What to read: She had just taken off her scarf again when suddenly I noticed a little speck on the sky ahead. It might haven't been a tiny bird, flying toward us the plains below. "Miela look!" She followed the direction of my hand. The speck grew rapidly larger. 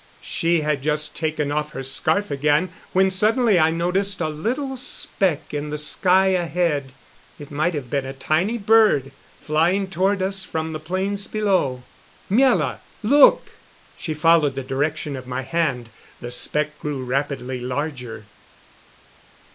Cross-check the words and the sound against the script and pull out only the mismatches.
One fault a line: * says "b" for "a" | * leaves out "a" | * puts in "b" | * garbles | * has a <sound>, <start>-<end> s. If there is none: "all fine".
* says "in" for "on"
* says "have" for "haven't"
* puts in "from"